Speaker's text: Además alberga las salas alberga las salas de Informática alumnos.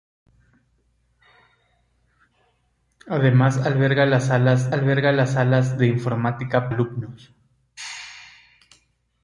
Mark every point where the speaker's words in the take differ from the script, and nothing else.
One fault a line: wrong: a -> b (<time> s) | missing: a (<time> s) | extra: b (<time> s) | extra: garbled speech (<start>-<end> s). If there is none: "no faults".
no faults